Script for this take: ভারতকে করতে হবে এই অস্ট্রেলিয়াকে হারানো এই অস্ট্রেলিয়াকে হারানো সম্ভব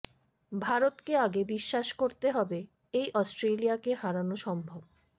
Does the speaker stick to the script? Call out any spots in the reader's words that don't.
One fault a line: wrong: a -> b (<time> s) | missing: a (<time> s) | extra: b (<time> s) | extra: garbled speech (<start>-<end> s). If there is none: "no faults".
extra: আগে বিশ্বাস (1.2 s)
missing: এই অস্ট্রেলিয়াকে হারানো (4.4 s)